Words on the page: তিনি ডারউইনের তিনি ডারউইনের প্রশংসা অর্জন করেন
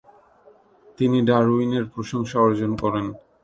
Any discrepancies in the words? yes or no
yes